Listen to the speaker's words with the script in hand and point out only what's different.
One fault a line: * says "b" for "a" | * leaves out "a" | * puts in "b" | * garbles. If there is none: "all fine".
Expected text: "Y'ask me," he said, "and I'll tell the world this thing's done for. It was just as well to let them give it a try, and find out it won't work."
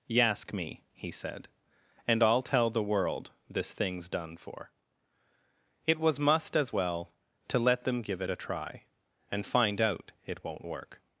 * says "must" for "just"